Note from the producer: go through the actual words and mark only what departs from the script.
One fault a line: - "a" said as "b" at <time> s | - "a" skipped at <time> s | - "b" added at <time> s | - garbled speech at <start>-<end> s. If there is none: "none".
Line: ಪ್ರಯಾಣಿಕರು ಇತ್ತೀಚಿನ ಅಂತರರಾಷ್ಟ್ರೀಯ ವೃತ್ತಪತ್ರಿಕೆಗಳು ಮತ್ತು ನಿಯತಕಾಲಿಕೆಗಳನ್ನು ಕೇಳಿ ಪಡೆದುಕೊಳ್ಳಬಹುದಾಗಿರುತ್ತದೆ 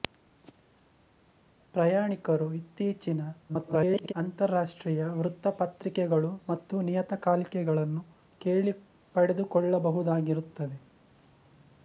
- garbled speech at 3.5-4.1 s